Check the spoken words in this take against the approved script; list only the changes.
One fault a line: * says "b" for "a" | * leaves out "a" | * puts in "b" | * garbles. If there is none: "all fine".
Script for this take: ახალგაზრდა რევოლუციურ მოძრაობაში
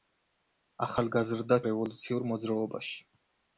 all fine